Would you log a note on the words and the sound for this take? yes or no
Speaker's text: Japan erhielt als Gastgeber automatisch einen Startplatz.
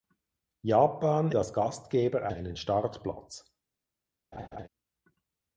yes